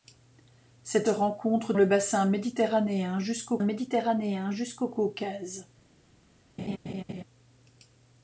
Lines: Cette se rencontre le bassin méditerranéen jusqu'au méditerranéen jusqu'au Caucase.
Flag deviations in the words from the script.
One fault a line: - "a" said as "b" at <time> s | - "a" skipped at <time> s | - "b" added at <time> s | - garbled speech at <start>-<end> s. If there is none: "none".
none